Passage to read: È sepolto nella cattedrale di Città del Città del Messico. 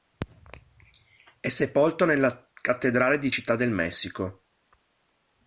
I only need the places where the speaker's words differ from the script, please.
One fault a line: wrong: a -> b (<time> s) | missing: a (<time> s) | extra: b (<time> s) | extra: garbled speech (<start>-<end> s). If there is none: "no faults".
missing: Città del (3.7 s)